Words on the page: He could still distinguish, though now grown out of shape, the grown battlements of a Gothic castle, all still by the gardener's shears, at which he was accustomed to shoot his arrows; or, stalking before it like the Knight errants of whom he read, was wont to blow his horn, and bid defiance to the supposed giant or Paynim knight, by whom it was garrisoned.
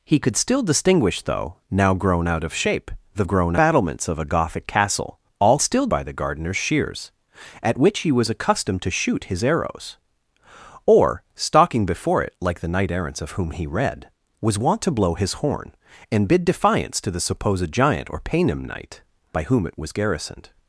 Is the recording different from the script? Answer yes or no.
no